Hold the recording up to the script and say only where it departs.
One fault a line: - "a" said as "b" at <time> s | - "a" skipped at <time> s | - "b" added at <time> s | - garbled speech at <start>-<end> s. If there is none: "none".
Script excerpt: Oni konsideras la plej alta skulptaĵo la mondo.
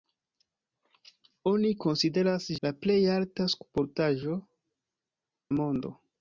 none